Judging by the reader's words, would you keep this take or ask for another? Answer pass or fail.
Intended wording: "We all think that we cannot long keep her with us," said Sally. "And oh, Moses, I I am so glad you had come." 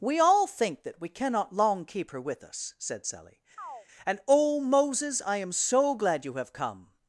fail